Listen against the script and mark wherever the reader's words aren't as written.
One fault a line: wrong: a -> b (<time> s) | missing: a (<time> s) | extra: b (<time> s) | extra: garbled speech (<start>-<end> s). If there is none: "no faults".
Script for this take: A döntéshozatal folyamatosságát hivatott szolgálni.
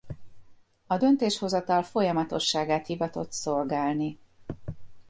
no faults